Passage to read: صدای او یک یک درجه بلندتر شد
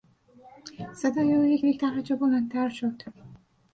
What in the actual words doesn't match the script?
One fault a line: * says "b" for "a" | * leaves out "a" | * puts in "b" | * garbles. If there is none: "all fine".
all fine